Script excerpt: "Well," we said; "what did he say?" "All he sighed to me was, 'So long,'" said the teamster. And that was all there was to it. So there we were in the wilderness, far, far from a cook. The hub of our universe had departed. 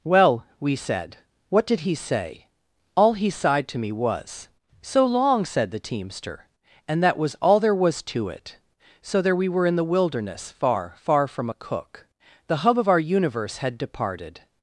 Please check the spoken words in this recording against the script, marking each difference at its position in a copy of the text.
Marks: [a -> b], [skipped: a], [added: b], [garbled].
"Well," we said; "what did he say?" "All he sighed to me was, 'So long,'" said the teamster. And that was all there was to it. So there we were in the wilderness, far, far from a cook. The hub of our universe had departed.